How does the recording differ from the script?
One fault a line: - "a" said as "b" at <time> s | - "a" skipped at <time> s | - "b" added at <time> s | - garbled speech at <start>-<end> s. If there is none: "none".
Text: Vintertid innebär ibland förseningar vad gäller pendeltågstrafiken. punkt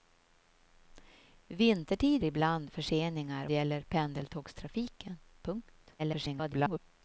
- "innebär" skipped at 2.2 s
- "vad" skipped at 3.5 s
- garbled speech at 6.0-6.8 s